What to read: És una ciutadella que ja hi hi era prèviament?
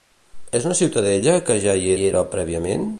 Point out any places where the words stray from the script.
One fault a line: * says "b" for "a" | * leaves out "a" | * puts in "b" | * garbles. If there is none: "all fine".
all fine